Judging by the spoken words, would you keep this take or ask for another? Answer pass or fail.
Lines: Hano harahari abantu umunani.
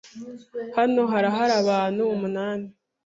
pass